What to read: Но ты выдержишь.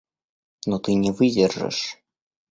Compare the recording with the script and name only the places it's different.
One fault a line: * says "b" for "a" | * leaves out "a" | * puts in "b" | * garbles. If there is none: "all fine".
* puts in "не"